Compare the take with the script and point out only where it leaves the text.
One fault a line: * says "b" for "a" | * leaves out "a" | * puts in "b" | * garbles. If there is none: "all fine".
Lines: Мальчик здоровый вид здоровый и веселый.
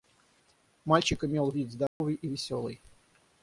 * says "имел" for "здоровый"